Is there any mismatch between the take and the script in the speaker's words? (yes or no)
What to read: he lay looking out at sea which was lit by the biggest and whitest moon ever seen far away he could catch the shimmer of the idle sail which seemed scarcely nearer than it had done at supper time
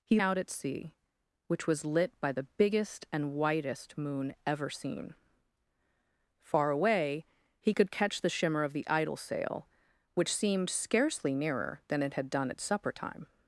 yes